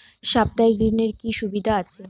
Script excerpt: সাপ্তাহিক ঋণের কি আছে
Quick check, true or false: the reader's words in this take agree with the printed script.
false